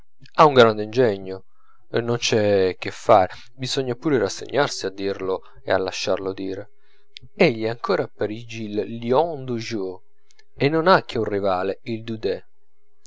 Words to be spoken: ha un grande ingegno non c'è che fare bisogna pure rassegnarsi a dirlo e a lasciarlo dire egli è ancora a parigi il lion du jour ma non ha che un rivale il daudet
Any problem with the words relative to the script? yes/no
yes